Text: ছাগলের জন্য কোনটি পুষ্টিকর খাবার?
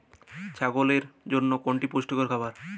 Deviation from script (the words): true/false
false